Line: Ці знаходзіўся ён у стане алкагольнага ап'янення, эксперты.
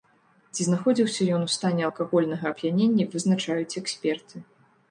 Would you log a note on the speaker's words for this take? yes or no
yes